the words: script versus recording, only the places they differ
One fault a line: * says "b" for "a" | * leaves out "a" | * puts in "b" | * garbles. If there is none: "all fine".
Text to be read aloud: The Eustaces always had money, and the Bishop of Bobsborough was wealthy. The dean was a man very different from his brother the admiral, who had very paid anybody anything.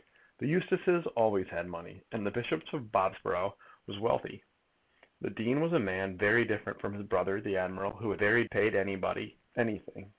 all fine